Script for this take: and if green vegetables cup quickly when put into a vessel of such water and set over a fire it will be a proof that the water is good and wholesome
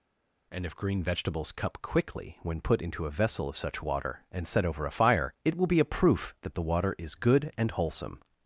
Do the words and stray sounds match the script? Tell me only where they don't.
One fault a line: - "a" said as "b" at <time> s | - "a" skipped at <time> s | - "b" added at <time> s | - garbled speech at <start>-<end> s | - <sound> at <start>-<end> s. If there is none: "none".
none